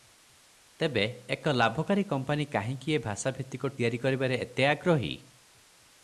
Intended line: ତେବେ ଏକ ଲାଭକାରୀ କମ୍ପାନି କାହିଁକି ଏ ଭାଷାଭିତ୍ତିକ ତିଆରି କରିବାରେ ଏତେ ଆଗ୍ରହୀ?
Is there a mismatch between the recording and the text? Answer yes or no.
no